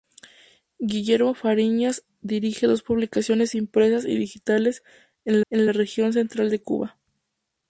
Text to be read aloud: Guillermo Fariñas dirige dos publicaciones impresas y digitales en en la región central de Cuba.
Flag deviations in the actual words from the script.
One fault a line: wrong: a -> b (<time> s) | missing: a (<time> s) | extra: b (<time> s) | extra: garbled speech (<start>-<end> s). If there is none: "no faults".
no faults